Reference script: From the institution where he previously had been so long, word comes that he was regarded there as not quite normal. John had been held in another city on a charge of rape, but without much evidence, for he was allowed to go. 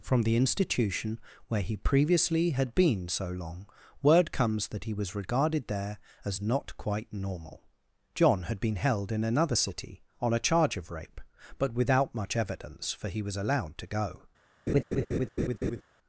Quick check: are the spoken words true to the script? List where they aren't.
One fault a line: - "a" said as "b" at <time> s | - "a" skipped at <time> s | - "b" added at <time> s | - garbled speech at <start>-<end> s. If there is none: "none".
none